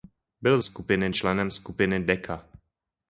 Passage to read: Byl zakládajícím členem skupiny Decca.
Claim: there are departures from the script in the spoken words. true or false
true